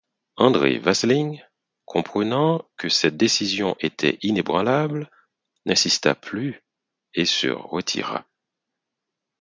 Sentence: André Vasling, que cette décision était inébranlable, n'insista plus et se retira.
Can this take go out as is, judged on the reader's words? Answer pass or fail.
fail